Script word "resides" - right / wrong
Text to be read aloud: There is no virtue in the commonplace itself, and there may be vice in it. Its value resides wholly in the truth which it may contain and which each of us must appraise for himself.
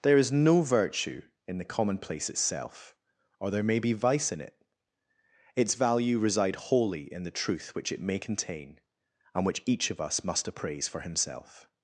wrong